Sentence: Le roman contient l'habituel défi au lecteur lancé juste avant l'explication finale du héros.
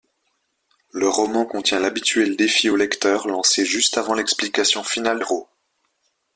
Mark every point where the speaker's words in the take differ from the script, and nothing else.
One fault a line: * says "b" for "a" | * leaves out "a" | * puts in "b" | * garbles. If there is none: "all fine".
* leaves out "du"